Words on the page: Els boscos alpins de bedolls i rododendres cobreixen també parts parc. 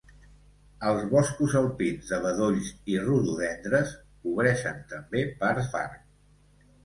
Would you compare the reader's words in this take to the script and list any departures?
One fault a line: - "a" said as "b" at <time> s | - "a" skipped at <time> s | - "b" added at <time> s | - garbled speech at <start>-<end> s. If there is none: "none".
none